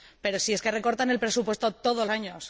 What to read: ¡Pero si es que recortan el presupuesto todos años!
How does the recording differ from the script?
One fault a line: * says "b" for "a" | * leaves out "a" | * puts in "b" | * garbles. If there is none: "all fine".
all fine